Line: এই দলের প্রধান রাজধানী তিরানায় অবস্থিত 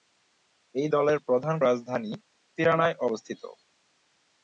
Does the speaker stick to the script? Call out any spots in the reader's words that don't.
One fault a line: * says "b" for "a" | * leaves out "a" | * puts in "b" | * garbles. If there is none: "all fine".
all fine